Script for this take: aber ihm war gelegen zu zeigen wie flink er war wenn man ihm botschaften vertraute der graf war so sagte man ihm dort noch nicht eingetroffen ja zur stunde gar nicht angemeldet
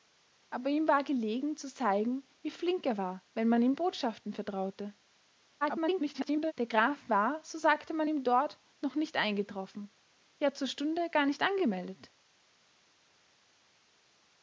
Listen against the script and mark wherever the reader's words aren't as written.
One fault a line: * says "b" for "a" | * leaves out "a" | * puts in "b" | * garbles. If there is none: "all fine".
* garbles